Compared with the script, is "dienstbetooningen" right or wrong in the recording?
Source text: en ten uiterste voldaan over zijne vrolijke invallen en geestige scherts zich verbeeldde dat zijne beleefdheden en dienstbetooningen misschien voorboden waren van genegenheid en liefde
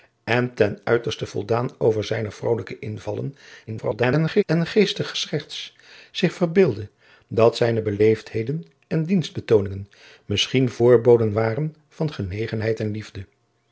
right